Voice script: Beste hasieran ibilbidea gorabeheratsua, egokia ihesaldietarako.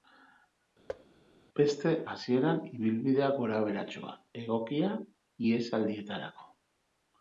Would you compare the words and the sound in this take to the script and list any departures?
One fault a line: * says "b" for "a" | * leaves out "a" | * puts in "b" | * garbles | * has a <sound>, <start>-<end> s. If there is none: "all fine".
* has a thud, 0.9-1.1 s